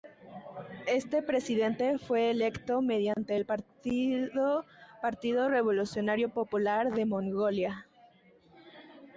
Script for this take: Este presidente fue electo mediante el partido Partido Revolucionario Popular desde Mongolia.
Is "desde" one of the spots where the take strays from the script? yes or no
yes